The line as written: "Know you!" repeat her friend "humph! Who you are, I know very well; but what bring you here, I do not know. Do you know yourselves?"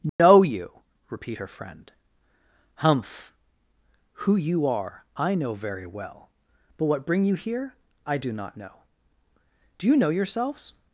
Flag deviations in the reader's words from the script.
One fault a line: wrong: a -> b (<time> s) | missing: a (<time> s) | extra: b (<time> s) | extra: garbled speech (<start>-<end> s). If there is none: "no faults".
no faults